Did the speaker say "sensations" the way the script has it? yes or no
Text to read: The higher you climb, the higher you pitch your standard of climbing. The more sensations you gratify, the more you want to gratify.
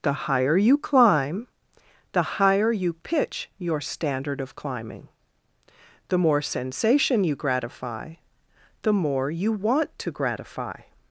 no